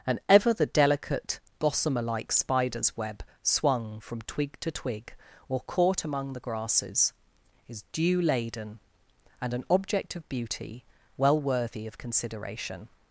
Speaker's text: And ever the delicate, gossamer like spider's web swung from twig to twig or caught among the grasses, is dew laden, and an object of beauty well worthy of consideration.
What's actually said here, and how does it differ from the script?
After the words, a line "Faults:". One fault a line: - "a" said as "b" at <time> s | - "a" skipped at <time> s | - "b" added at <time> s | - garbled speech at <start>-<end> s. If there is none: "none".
And ever the delicate, gossamer like spider's web swung from twig to twig or caught among the grasses, is dew laden, and an object of beauty well worthy of consideration.
Faults:
none